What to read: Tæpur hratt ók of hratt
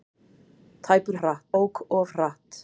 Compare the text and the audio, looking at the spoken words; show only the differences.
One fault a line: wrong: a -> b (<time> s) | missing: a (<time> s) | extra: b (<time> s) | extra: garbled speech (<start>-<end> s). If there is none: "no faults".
no faults